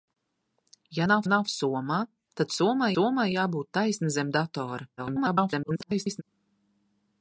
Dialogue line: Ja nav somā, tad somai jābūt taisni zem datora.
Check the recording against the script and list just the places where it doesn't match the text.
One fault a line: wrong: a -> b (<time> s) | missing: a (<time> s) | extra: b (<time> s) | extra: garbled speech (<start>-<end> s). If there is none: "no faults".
extra: nav (1.3 s)
extra: somai (2.9 s)
extra: garbled speech (5.0-6.2 s)